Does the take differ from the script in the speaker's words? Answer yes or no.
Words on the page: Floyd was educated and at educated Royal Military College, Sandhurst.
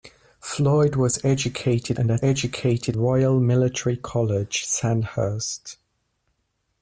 no